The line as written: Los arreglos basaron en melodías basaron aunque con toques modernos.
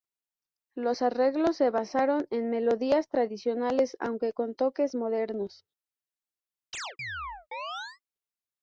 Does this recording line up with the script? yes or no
no